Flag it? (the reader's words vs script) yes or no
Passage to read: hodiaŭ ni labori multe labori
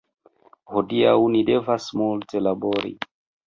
yes